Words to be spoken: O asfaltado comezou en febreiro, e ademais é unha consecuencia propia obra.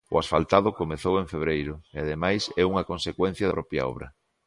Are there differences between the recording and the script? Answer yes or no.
no